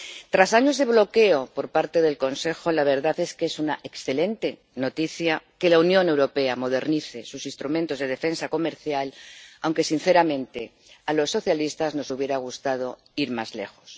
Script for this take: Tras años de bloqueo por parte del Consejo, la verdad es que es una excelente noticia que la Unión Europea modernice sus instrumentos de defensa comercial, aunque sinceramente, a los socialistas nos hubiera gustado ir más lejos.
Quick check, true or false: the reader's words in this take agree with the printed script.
true